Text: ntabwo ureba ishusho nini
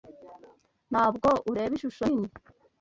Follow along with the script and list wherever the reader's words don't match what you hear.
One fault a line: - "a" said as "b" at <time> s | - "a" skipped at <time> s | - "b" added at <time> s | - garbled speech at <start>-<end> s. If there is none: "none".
none